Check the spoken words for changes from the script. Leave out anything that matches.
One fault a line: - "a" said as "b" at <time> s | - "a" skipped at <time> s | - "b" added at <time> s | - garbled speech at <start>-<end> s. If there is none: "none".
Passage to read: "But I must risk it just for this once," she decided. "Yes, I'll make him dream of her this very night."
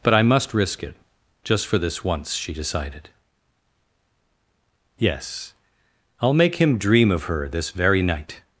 none